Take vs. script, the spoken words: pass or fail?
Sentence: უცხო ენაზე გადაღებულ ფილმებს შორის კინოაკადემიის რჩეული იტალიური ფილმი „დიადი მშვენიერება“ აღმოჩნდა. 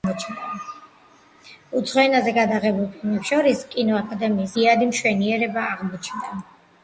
fail